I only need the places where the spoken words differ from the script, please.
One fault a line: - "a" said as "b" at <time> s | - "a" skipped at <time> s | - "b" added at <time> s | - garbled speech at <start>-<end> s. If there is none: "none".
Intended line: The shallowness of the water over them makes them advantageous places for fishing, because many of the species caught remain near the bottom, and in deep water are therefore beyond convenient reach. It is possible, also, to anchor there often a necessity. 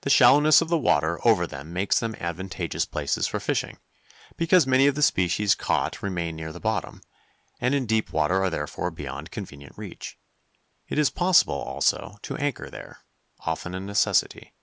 none